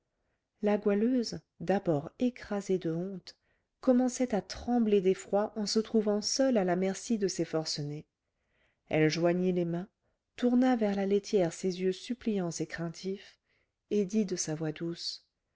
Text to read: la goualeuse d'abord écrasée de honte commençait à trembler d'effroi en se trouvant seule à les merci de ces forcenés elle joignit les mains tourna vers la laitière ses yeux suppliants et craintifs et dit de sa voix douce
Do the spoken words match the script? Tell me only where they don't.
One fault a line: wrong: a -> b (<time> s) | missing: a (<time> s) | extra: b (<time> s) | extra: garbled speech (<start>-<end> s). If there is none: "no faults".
wrong: les -> la (6.6 s)